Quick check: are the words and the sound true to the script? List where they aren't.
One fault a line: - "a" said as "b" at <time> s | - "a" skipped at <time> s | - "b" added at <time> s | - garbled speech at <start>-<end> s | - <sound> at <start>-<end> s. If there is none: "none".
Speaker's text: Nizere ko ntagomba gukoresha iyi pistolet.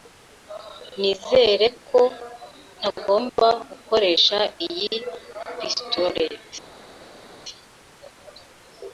none